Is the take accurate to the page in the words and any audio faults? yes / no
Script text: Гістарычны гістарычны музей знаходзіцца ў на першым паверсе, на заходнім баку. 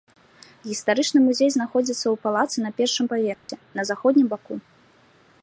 no